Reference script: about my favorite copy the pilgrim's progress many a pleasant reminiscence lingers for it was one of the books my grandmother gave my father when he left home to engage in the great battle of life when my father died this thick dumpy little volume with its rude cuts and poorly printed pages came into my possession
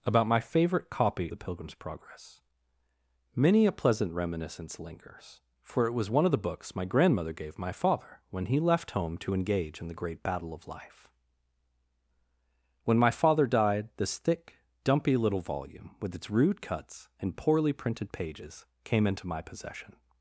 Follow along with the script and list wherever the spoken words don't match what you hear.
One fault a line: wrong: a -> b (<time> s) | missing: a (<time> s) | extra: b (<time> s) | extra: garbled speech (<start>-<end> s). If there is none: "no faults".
no faults